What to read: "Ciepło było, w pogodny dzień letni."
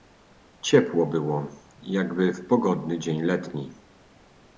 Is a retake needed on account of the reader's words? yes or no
yes